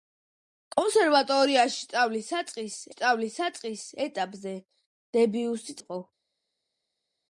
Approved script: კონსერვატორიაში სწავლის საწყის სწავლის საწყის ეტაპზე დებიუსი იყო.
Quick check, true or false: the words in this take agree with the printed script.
true